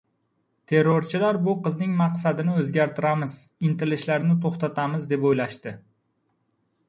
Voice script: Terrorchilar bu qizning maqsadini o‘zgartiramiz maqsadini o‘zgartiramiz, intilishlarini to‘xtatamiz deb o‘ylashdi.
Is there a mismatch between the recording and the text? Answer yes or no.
yes